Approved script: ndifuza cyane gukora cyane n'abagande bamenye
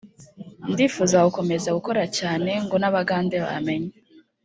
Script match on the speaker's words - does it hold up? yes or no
no